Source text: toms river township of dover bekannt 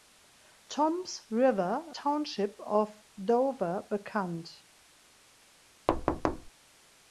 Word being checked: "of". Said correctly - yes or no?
yes